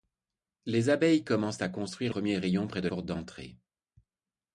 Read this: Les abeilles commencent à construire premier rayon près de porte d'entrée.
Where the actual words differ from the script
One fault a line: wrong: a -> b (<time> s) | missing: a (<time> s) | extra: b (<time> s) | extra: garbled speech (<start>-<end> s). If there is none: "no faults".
no faults